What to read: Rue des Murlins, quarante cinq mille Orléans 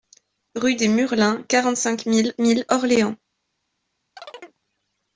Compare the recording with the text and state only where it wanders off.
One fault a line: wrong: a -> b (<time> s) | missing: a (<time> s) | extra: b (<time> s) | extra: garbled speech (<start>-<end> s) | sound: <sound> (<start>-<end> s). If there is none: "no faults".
extra: mille (2.4 s)
sound: chirp (4.2-4.6 s)